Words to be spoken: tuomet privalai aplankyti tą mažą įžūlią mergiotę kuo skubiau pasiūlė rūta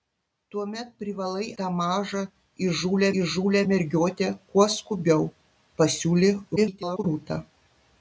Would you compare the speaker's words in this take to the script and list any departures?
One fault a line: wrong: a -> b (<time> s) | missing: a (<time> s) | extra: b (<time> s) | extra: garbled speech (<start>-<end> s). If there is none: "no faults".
missing: aplankyti (1.5 s)
extra: įžūlią (3.2 s)
extra: garbled speech (6.6-7.0 s)